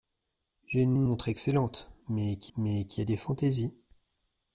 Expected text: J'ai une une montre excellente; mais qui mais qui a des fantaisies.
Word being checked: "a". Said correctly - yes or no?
yes